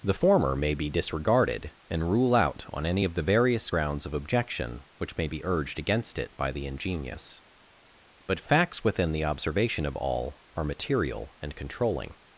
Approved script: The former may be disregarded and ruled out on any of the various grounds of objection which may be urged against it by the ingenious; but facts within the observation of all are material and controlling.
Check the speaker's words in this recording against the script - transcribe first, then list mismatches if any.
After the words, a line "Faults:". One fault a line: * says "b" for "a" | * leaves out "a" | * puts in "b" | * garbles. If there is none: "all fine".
The former may be disregarded and rule out on any of the various grounds of objection which may be urged against it by the ingenious; but facts within the observation of all are material and controlling.
Faults:
* says "rule" for "ruled"